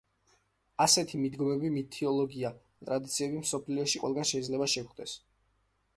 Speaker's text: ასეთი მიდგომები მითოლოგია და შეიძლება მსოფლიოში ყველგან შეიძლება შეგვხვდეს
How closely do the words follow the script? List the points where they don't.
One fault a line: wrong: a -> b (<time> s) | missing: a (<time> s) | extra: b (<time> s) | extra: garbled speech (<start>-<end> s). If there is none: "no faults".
wrong: შეიძლება -> ტრადიციები (2.9 s)